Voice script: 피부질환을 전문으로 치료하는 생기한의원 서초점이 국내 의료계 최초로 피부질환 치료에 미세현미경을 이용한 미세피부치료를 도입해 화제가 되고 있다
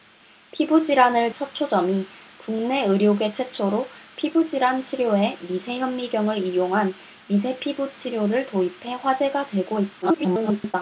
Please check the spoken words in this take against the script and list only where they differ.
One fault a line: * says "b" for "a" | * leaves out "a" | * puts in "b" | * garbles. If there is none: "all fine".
* leaves out "전문으로 치료하는 생기한의원"
* garbles